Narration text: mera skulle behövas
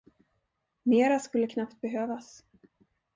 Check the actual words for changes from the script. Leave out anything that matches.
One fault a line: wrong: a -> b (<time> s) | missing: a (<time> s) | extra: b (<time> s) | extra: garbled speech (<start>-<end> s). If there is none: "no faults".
extra: knappt (1.4 s)